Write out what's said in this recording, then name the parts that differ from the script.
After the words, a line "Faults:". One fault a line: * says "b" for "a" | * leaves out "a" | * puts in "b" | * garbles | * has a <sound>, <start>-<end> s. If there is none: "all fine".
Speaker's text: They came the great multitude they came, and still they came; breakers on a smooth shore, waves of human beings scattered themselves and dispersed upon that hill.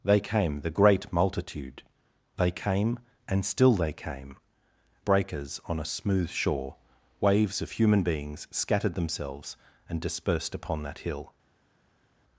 They came the great multitude they came, and still they came; breakers on a smooth shore, waves of human beings scattered themselves and dispersed upon that hill.
Faults:
all fine